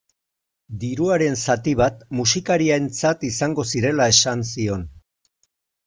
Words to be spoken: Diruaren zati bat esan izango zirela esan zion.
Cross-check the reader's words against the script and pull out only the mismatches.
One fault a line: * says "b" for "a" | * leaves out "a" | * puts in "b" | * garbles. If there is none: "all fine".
* says "musikarientzat" for "esan"